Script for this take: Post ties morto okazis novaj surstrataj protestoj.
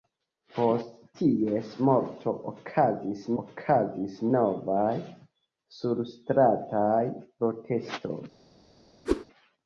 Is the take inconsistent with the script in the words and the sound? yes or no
yes